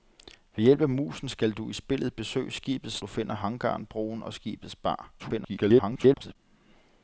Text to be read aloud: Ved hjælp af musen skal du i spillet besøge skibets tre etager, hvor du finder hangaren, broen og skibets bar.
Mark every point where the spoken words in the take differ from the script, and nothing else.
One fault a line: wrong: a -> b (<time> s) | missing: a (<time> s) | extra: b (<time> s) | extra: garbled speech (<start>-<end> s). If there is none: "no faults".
missing: tre etager hvor (3.0 s)
extra: garbled speech (5.2-6.4 s)